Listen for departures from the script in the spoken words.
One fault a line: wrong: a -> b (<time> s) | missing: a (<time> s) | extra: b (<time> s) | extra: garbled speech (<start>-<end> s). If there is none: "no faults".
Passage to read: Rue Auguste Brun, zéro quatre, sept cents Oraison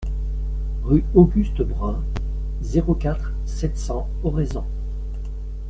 no faults